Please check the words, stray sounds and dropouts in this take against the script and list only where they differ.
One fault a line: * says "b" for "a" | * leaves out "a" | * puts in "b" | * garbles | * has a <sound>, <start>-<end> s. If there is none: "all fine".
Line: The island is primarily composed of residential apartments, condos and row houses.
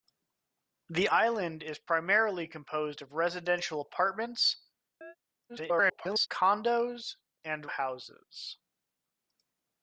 * has a chirp, 5.0-5.2 s
* garbles
* leaves out "row"